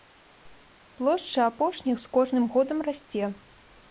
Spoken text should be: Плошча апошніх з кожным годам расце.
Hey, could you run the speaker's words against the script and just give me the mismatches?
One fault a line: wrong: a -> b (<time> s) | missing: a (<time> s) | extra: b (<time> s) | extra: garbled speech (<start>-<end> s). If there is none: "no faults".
no faults